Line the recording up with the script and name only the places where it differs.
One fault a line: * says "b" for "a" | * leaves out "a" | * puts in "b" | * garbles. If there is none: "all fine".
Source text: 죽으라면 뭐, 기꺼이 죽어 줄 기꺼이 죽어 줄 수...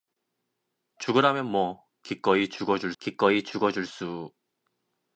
all fine